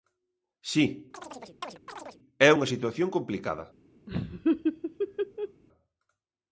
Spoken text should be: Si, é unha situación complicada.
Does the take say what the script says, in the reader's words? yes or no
yes